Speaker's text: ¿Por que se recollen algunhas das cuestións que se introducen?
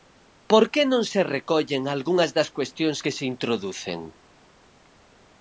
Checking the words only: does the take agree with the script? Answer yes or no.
no